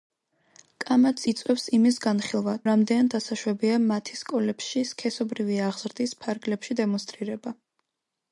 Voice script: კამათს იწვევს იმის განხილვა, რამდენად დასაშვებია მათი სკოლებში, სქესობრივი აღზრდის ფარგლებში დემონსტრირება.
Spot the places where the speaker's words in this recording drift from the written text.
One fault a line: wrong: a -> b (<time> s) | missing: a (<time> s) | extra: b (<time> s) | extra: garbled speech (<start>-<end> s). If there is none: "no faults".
no faults